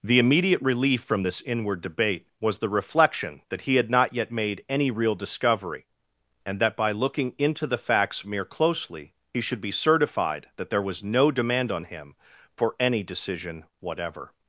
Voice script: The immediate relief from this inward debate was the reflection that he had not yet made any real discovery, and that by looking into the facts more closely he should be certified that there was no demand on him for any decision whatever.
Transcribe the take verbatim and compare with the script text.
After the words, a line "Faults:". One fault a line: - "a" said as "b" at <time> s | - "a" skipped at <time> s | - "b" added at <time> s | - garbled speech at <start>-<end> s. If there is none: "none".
The immediate relief from this inward debate was the reflection that he had not yet made any real discovery, and that by looking into the facts mere closely he should be certified that there was no demand on him for any decision whatever.
Faults:
- "more" said as "mere" at 8.2 s